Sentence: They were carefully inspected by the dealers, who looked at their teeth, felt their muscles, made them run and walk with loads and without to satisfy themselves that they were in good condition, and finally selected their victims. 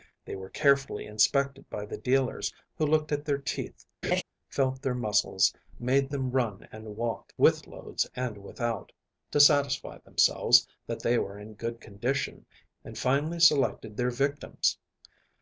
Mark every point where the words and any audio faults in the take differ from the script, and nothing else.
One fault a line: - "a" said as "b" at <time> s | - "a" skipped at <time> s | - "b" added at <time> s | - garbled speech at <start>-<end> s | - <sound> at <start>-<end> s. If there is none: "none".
- laugh at 4.0-4.2 s